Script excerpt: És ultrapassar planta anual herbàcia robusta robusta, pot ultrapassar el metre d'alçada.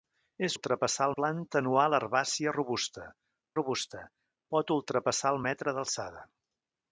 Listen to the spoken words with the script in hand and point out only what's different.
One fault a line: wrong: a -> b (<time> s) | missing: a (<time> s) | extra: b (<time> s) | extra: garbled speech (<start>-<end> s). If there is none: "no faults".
no faults